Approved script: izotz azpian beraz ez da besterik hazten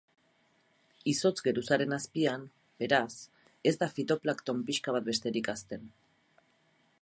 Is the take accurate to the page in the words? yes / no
no